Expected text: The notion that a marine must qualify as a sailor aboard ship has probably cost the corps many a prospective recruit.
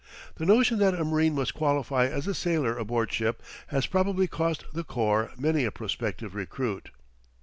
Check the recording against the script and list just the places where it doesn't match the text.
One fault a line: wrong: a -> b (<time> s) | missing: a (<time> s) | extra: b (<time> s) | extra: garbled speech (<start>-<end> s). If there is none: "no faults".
no faults